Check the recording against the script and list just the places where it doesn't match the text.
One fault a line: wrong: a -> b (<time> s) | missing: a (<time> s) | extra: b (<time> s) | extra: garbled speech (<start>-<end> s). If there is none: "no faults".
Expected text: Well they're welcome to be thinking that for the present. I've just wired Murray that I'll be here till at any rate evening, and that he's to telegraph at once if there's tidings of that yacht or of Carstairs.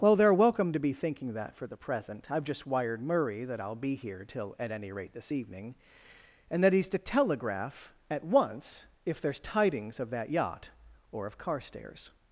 extra: this (5.1 s)